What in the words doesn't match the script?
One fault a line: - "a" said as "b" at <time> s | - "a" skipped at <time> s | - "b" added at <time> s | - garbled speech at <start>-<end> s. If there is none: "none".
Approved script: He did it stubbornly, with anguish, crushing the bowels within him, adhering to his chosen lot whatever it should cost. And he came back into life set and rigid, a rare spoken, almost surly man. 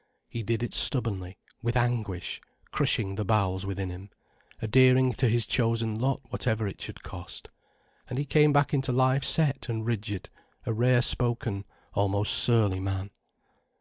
none